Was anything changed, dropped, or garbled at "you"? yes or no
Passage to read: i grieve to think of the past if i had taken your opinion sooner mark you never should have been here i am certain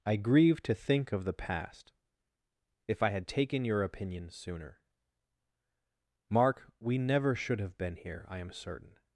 yes